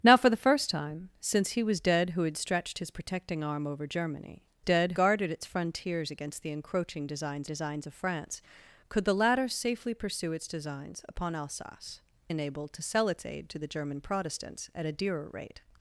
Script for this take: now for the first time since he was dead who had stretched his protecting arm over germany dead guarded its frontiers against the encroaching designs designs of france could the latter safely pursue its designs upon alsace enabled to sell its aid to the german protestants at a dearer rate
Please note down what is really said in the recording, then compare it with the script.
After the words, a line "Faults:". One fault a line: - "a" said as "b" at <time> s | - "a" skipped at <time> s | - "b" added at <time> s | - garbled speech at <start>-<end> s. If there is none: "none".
now for the first time since he was dead who had stretched his protecting arm over germany dead guarded its frontiers against the encroaching designs designs of france could the latter safely pursue its designs upon alsace enabled to sell its aid to the german protestants at a dearer rate
Faults:
none